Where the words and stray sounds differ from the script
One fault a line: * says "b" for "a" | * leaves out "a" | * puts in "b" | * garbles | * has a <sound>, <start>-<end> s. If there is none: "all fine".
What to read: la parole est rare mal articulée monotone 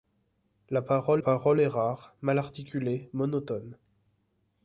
* puts in "parole"